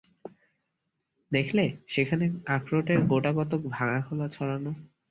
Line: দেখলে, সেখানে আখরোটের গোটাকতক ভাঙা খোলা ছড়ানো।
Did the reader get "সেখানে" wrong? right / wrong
right